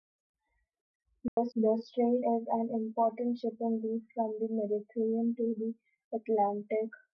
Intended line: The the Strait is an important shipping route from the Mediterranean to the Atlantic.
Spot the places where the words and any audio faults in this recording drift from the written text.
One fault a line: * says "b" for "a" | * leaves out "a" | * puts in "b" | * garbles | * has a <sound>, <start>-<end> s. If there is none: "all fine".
* has a dropout, 1.3-1.4 s